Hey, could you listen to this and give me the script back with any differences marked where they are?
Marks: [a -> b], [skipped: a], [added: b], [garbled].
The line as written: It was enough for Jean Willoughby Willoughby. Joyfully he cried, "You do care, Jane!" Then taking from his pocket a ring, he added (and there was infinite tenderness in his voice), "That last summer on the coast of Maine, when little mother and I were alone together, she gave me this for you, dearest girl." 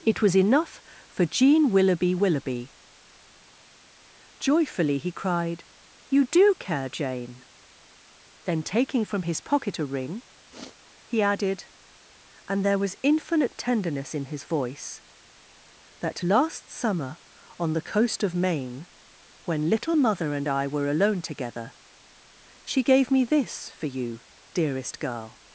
It was enough for Jean Willoughby Willoughby. Joyfully he cried, "You do care, Jane!" Then taking from his pocket a ring, he added (and there was infinite tenderness in his voice), "That last summer on the coast of Maine, when little mother and I were alone together, she gave me this for you, dearest girl."